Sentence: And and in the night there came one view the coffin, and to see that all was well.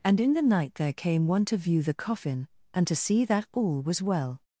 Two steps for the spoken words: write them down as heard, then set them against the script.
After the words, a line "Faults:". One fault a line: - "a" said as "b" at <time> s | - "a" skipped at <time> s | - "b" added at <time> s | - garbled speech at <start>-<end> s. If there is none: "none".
And in the night there came one to view the coffin, and to see that all was well.
Faults:
- "and" skipped at 0.2 s
- "to" added at 1.4 s